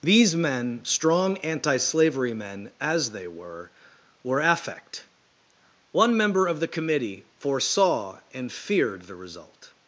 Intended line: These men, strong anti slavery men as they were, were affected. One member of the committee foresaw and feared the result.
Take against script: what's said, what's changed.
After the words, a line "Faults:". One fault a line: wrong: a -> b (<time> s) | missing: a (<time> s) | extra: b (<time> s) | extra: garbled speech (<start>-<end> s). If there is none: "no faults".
These men, strong anti slavery men as they were, were affect. One member of the committee foresaw and feared the result.
Faults:
wrong: affected -> affect (4.4 s)